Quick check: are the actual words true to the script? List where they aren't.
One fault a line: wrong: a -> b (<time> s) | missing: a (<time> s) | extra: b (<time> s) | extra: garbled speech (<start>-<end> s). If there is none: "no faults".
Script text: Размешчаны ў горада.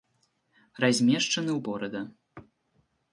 no faults